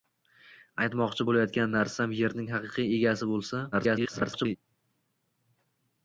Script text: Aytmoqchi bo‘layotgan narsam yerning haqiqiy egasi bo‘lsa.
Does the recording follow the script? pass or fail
fail